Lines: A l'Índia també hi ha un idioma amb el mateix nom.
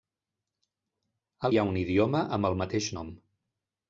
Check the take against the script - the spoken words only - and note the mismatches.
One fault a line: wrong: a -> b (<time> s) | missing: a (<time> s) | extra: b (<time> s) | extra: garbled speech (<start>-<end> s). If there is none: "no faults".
missing: l'Índia també (1.5 s)